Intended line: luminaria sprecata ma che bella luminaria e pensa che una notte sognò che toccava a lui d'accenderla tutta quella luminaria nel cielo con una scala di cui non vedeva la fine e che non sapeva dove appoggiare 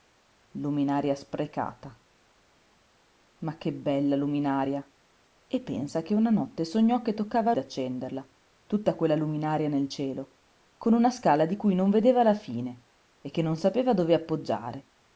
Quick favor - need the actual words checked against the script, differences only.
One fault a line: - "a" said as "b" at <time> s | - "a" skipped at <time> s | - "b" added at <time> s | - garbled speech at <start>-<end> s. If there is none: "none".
- "lui" skipped at 7.5 s